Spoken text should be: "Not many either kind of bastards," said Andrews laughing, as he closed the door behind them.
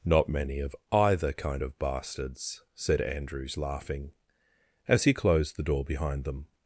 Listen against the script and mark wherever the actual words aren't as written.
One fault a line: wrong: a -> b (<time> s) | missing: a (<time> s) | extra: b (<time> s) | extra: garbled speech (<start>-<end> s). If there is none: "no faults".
extra: of (0.6 s)